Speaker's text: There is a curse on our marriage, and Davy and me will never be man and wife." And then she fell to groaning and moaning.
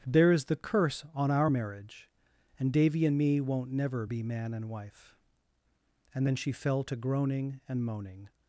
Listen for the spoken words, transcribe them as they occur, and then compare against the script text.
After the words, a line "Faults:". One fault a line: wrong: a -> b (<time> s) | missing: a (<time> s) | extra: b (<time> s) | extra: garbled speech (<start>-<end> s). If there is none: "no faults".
There is the curse on our marriage, and Davy and me won't never be man and wife." And then she fell to groaning and moaning.
Faults:
wrong: a -> the (0.5 s)
wrong: will -> won't (3.4 s)